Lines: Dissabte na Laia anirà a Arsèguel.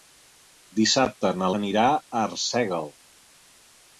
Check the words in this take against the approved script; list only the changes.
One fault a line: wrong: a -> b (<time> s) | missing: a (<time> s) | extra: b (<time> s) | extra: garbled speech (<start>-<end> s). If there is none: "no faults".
missing: Laia (1.5 s)